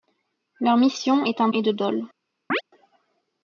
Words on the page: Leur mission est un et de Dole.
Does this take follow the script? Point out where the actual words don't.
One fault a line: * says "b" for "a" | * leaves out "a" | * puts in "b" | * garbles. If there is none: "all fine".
all fine